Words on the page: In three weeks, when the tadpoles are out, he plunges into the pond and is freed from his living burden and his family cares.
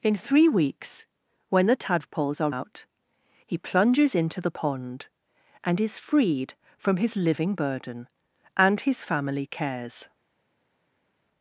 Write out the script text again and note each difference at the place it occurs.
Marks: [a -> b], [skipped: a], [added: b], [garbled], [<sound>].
In three weeks, when the tadpoles are out, he plunges into the pond and is freed from his living burden and his family cares.